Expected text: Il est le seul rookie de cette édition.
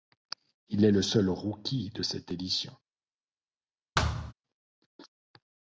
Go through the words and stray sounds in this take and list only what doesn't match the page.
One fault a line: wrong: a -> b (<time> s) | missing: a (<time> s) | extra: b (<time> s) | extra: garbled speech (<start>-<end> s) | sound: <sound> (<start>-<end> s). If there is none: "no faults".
sound: thud (3.9-4.3 s)